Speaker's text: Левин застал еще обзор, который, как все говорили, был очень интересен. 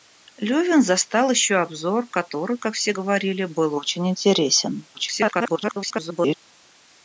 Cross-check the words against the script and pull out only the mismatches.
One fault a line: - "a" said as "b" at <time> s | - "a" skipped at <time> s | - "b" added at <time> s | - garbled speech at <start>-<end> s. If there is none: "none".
- garbled speech at 4.9-6.3 s